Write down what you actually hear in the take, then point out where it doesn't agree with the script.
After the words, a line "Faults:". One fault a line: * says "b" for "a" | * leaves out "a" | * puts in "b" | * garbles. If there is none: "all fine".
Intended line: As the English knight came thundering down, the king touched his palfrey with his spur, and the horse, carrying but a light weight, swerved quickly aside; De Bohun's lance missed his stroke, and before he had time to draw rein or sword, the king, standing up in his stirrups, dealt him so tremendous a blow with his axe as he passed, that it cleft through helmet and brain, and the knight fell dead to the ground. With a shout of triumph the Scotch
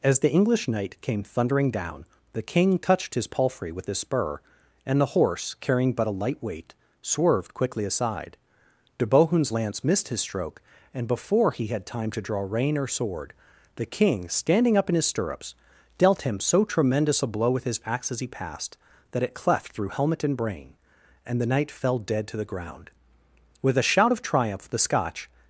As the English knight came thundering down, the king touched his palfrey with his spur, and the horse, carrying but a light weight, swerved quickly aside; De Bohun's lance missed his stroke, and before he had time to draw rein or sword, the king, standing up in his stirrups, dealt him so tremendous a blow with his axe as he passed, that it cleft through helmet and brain, and the knight fell dead to the ground. With a shout of triumph the Scotch
Faults:
all fine